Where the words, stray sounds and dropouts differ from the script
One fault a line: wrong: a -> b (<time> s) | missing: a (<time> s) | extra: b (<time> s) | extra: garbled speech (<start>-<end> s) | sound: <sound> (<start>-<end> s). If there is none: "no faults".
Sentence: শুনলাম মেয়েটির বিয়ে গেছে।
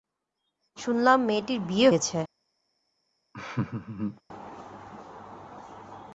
sound: laugh (3.3-4.2 s)